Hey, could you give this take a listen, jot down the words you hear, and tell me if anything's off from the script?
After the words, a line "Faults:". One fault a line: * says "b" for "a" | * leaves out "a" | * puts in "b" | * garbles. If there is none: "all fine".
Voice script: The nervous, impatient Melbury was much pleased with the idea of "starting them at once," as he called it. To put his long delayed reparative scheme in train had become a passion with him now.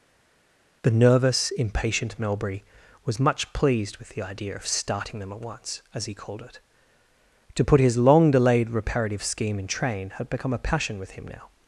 The nervous, impatient Melbury was much pleased with the idea of "starting them at once," as he called it. To put his long delayed reparative scheme in train had become a passion with him now.
Faults:
all fine